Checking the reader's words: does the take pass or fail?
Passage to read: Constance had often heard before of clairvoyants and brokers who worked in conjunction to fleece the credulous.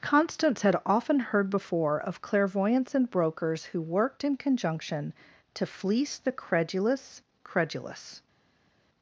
fail